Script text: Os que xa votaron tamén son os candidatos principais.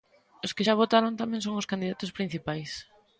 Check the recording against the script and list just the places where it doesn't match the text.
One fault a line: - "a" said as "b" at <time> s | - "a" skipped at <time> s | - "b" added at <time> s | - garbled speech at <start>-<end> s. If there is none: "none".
none